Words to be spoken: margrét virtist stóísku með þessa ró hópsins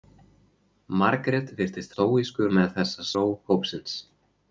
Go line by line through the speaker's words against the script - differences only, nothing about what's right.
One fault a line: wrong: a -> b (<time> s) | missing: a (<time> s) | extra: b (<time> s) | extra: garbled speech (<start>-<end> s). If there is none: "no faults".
no faults